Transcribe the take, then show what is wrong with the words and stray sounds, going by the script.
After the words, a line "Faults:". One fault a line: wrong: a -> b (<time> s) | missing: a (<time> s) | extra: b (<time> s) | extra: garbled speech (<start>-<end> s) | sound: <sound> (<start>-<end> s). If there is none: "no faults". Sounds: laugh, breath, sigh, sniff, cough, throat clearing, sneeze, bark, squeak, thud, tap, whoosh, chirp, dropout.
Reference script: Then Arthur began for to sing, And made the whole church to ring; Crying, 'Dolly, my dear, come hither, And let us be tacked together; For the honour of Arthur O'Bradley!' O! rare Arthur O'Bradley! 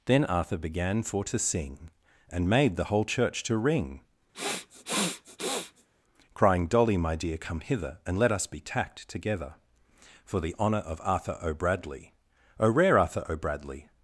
Then Arthur began for to sing, And made the whole church to ring; Crying, 'Dolly, my dear, come hither, And let us be tacked together; For the honour of Arthur O'Bradley!' O! rare Arthur O'Bradley!
Faults:
sound: sniff (4.3-5.9 s)